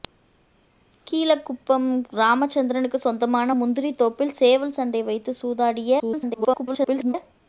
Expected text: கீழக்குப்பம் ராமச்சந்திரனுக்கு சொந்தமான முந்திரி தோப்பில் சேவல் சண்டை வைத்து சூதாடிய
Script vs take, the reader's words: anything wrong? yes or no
yes